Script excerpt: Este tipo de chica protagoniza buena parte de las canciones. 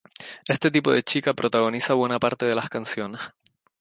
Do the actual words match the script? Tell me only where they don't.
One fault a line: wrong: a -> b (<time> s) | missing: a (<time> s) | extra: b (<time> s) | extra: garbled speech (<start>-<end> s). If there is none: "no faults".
no faults